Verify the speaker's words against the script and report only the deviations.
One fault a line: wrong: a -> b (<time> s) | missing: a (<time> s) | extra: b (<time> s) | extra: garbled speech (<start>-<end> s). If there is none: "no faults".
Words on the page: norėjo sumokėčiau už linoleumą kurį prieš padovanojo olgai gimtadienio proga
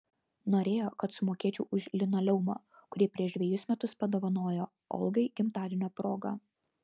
extra: kad (1.0 s)
extra: dvejus metus (3.4 s)